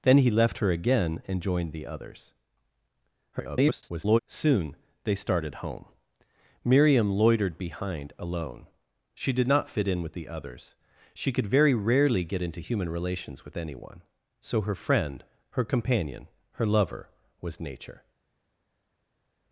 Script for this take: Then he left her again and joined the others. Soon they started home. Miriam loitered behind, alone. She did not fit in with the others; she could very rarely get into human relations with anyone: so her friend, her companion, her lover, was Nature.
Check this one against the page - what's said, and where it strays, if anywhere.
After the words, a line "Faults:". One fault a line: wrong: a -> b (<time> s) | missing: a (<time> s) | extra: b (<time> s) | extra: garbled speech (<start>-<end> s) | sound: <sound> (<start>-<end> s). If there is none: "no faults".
Then he left her again and joined the others. [garbled] Soon they started home. Miriam loitered behind, alone. She did not fit in with the others; she could very rarely get into human relations with anyone: so her friend, her companion, her lover, was Nature.
Faults:
extra: garbled speech (3.3-4.2 s)